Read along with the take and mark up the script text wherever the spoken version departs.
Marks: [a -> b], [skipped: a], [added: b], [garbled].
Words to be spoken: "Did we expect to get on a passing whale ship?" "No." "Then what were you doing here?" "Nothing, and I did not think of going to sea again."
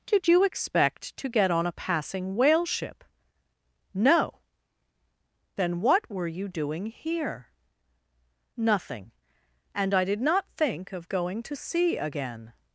"Did [we -> you] expect to get on a passing whale ship?" "No." "Then what were you doing here?" "Nothing, and I did not think of going to sea again."